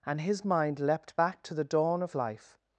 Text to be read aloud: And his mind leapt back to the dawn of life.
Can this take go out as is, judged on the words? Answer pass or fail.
pass